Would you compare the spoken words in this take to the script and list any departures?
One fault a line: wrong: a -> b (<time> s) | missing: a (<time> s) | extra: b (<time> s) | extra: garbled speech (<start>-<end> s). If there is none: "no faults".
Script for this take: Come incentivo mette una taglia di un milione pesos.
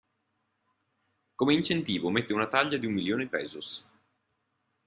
no faults